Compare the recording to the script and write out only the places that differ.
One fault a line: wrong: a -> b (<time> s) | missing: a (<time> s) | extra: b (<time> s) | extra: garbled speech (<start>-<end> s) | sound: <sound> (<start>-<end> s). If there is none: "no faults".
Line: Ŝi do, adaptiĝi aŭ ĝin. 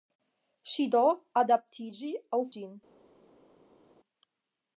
no faults